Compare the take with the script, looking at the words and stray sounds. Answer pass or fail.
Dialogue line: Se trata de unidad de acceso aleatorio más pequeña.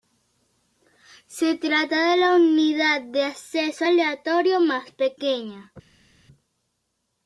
fail